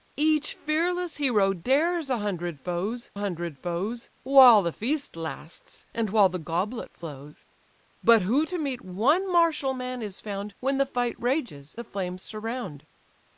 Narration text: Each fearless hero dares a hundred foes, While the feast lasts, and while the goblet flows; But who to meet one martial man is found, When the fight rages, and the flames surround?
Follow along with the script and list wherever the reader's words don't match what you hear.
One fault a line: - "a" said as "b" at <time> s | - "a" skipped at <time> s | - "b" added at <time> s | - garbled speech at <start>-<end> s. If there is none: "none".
- "hundred foes" added at 3.1 s
- "and" skipped at 11.8 s